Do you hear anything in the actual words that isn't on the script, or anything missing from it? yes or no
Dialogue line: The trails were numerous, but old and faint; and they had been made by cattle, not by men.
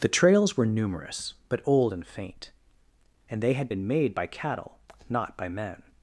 no